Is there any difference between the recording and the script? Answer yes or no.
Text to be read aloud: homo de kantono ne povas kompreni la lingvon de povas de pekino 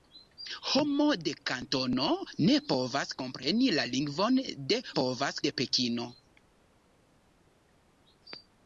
no